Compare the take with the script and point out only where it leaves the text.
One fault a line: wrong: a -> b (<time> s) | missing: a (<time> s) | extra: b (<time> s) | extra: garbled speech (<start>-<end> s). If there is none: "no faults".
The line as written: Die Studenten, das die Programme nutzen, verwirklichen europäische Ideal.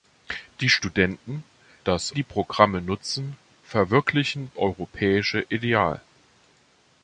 no faults